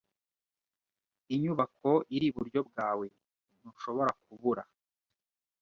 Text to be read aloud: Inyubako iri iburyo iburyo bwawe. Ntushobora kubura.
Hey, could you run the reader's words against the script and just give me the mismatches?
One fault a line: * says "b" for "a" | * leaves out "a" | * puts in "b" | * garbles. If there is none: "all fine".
* leaves out "iburyo"